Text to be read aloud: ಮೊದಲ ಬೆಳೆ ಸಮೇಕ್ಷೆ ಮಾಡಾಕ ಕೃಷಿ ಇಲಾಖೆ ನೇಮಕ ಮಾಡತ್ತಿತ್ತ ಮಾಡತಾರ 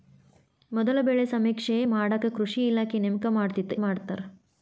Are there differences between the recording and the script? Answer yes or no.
no